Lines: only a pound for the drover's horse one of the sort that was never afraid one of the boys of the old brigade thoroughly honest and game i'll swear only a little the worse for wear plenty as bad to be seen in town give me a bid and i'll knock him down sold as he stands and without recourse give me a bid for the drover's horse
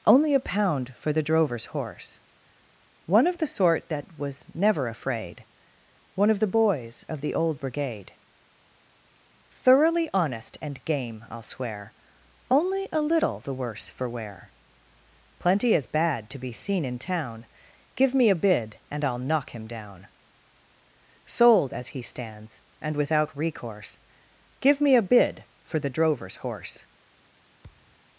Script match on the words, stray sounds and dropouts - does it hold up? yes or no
no